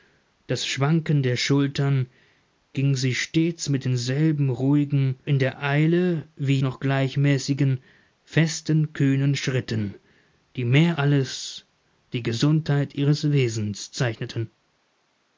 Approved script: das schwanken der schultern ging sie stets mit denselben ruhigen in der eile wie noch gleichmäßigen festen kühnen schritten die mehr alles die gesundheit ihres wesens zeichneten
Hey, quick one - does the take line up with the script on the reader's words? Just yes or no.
yes